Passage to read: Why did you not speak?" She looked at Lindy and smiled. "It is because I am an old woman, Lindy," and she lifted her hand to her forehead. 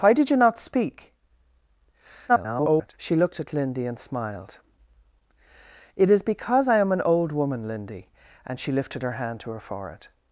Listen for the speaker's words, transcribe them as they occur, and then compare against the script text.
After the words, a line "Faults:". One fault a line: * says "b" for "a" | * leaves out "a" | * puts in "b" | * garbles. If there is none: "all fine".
Why did you not speak?" [garbled] She looked at Lindy and smiled. "It is because I am an old woman, Lindy," and she lifted her hand to her forehead.
Faults:
* garbles